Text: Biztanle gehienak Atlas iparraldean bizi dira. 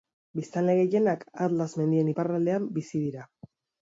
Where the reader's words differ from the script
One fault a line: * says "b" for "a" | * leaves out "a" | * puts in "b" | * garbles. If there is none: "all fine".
* puts in "mendien"